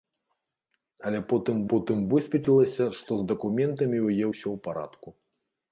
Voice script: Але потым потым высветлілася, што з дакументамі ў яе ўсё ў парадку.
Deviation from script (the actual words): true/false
false